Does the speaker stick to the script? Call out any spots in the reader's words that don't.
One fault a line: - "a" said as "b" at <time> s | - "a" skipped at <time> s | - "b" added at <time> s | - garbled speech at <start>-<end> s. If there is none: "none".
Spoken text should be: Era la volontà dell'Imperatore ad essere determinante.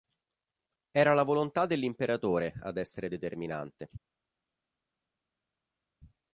none